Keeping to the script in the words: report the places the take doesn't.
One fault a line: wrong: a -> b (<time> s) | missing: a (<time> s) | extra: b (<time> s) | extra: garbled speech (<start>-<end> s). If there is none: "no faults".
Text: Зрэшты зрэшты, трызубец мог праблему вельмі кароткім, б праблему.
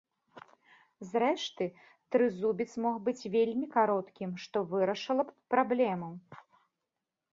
missing: зрэшты (1.6 s)
wrong: праблему -> быць (3.1 s)
extra: што вырашыла (4.5 s)